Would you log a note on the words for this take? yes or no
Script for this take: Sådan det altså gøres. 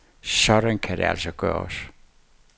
yes